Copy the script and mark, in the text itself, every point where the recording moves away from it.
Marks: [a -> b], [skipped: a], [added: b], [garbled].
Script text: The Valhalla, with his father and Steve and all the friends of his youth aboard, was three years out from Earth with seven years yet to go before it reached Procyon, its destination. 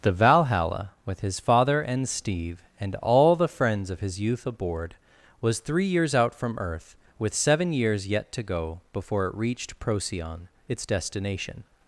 The Valhalla, with his father and Steve and all the friends of his youth aboard, was three years out from Earth with seven years yet to go before it reached Procyon, its destination.